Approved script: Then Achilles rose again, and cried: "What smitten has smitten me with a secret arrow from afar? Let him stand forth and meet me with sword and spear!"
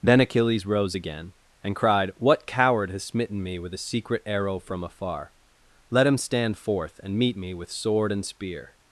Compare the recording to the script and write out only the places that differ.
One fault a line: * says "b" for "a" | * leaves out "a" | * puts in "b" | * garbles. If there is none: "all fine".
* says "coward" for "smitten"